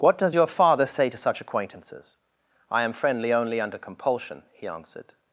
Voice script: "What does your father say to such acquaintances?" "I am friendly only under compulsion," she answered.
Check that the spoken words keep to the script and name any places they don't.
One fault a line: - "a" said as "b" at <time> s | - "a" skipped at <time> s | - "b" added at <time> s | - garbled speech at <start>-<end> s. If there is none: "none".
- "she" said as "he" at 4.5 s